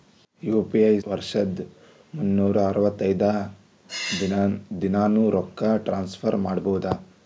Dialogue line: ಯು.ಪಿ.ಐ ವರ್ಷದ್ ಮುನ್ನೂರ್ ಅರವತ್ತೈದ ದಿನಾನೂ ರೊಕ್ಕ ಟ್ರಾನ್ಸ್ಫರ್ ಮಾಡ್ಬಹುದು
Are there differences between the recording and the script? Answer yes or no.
no